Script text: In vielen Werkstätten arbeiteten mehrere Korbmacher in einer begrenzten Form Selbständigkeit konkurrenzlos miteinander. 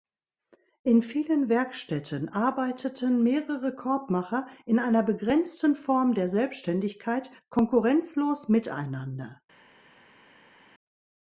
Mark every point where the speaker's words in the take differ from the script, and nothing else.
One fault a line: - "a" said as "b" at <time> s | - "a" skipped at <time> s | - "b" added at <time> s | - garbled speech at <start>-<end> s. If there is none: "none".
- "der" added at 6.1 s